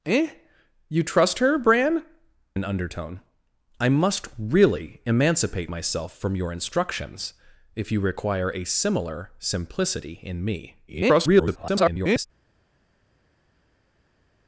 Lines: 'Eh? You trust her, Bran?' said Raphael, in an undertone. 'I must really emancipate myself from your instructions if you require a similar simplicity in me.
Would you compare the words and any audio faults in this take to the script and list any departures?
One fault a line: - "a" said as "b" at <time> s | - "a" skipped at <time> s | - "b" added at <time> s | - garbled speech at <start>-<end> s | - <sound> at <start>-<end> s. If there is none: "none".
- "said Raphael in" skipped at 2.0 s
- garbled speech at 10.9-12.3 s